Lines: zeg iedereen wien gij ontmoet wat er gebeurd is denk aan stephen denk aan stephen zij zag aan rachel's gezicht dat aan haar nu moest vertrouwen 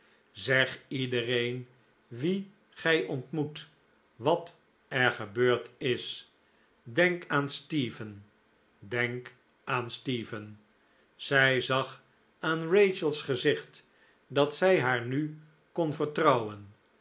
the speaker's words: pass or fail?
fail